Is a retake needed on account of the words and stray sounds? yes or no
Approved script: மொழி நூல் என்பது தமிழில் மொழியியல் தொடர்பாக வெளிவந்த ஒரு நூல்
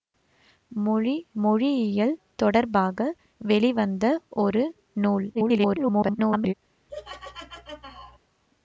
yes